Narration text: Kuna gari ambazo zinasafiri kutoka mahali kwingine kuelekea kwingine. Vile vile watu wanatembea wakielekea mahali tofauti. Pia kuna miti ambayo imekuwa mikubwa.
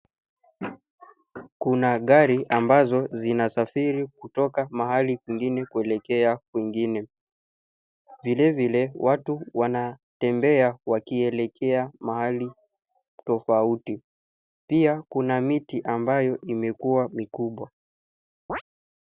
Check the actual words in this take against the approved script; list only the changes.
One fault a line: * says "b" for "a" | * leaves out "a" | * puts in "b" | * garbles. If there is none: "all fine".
all fine